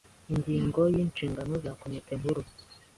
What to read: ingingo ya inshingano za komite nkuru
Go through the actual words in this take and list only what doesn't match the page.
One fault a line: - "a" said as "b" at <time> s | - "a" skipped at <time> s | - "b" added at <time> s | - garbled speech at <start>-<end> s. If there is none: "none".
none